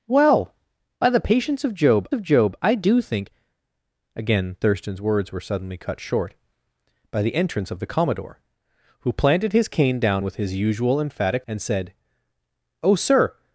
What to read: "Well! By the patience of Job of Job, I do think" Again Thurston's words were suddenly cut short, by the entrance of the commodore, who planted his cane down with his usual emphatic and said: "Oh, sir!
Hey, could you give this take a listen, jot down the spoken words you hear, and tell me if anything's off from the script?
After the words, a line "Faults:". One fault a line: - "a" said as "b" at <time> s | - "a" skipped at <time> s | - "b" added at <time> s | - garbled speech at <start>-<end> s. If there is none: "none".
"Well! By the patience of Job of Job, I do think" Again Thurston's words were suddenly cut short, by the entrance of the commodore, who planted his cane down with his usual emphatic and said: "Oh, sir!
Faults:
none